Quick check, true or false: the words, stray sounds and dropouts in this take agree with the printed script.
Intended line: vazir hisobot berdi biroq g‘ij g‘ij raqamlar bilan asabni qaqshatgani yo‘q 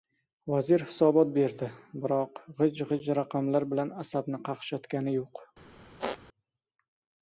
false